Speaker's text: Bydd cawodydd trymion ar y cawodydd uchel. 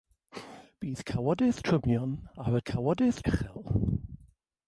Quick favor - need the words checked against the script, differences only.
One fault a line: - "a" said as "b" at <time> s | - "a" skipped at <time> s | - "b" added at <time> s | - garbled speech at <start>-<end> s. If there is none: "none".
none